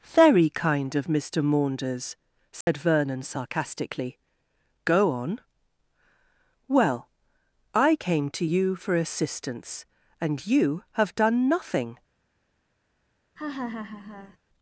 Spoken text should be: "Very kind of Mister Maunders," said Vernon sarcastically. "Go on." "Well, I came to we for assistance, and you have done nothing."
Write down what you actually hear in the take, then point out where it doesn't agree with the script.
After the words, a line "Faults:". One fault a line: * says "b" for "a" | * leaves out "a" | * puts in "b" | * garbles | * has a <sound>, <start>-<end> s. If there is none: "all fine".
"Very kind of Mister Maunders," said Vernon sarcastically. "Go on." "Well, I came to you for assistance, and you have done nothing."
Faults:
* has a dropout, 2.6-2.7 s
* says "you" for "we"
* has a laugh, 13.4-14.4 s